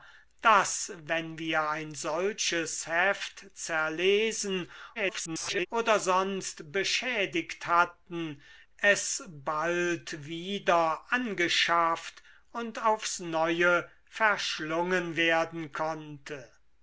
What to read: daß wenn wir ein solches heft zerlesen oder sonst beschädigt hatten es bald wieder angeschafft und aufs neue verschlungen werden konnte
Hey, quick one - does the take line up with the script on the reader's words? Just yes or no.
no